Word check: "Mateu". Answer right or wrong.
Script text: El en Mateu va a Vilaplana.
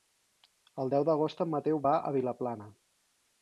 right